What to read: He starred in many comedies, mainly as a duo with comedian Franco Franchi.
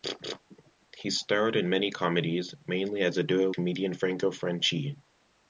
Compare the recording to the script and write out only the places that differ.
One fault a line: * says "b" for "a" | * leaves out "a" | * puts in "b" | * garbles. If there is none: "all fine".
* leaves out "with"